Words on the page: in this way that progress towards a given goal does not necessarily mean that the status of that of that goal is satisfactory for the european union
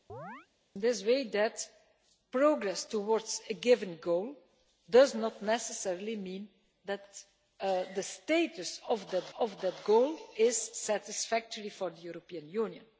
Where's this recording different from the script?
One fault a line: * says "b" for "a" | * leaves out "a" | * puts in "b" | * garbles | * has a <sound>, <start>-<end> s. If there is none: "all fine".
* has a chirp, 0.1-0.5 s